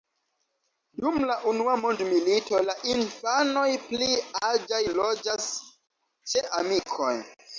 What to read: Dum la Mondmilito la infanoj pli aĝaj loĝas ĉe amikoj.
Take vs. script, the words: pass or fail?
fail